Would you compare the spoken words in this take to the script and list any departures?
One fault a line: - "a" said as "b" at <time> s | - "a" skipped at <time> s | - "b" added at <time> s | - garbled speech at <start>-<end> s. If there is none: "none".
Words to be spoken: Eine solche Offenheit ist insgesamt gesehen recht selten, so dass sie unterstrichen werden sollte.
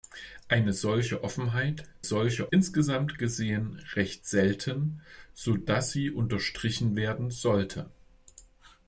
- "ist" said as "solche" at 2.0 s